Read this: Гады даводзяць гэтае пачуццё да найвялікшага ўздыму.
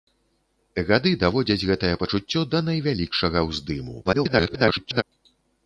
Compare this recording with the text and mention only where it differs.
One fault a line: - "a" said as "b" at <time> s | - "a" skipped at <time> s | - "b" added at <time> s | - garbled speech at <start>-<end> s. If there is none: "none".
- garbled speech at 4.0-5.0 s